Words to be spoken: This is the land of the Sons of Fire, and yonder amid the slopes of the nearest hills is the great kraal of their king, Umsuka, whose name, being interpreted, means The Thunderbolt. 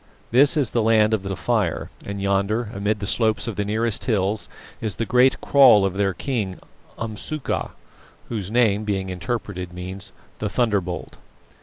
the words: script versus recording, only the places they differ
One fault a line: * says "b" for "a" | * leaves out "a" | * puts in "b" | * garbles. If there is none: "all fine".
* leaves out "Sons"